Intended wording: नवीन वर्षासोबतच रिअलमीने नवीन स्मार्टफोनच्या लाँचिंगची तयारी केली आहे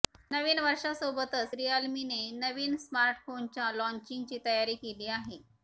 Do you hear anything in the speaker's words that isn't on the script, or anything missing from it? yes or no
no